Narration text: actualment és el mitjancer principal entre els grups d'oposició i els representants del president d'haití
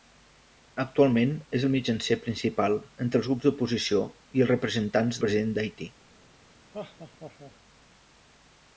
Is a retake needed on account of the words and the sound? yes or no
yes